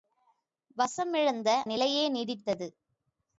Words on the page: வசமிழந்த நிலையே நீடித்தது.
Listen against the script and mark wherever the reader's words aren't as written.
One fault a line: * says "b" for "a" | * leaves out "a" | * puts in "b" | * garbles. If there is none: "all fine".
all fine